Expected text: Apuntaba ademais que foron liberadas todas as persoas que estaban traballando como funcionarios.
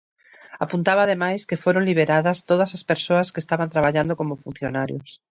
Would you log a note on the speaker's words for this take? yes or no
no